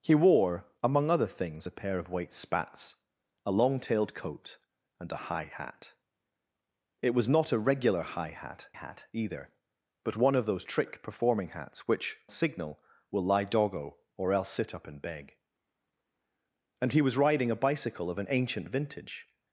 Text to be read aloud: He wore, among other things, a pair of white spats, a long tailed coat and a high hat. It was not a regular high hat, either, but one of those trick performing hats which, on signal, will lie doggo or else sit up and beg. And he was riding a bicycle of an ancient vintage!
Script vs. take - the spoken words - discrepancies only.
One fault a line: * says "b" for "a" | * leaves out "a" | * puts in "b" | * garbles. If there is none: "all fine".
* puts in "hat"
* leaves out "on"